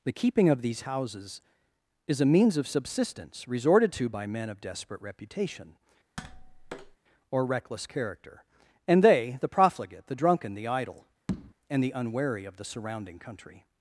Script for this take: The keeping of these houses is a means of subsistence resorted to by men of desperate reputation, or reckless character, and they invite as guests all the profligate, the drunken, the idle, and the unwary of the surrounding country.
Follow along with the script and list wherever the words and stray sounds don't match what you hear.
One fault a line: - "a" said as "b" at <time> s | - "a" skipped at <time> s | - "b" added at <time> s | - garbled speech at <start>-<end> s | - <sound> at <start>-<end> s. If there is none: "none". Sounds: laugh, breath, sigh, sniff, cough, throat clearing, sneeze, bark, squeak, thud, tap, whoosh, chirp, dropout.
- tap at 6.2-7.0 s
- "invite as guests all" skipped at 9.4 s
- tap at 11.3-11.5 s